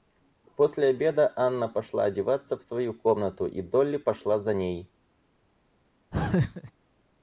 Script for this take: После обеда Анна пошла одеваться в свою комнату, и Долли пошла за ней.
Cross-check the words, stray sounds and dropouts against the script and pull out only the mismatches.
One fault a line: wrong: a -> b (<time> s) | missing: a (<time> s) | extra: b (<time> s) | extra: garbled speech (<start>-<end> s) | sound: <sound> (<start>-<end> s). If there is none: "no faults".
sound: laugh (6.1-6.7 s)